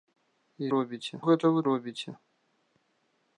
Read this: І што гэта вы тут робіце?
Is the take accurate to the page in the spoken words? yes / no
no